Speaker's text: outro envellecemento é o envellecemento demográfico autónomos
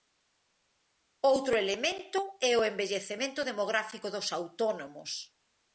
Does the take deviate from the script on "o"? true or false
false